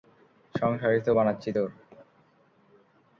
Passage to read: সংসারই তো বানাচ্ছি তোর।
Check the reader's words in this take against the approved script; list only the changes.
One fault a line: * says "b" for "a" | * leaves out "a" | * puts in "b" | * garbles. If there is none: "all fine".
all fine